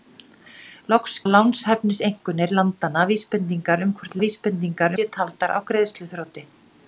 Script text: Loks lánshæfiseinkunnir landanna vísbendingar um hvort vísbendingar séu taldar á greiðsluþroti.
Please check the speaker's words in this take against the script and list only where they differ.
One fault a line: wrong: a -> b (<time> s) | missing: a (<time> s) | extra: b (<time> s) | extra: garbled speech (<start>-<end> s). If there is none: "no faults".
no faults